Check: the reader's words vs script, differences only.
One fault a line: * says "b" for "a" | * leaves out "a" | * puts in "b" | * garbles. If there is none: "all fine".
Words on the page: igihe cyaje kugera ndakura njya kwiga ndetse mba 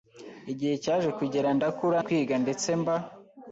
* leaves out "njya"